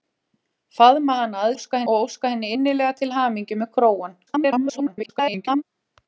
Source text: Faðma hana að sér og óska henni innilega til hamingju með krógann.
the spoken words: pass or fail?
fail